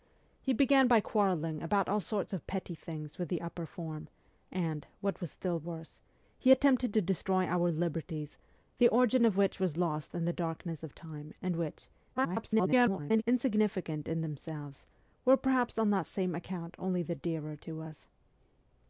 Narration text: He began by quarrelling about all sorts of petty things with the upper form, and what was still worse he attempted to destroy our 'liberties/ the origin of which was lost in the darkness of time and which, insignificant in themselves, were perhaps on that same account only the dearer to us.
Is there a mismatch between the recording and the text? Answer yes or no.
yes